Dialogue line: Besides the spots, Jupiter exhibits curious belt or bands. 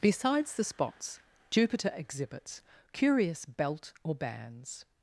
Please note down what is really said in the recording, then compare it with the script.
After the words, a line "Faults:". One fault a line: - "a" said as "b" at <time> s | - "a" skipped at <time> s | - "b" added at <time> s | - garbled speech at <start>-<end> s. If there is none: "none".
Besides the spots, Jupiter exhibits curious belt or bands.
Faults:
none